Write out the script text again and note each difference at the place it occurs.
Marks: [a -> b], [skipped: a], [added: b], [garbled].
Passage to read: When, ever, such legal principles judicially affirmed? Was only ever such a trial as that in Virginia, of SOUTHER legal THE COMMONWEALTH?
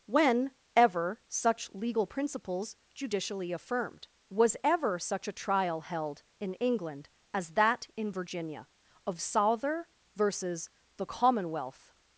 When, ever, such legal principles judicially affirmed? Was [skipped: only] ever such a trial [added: held in England] as that in Virginia, of SOUTHER [legal -> versus] THE COMMONWEALTH?